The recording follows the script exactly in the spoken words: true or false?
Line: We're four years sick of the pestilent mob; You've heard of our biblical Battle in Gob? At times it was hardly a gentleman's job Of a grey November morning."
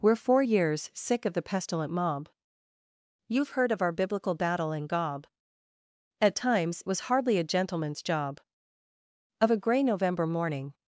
false